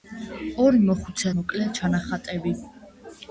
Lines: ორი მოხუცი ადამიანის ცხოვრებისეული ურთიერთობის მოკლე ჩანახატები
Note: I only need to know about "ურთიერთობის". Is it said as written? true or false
false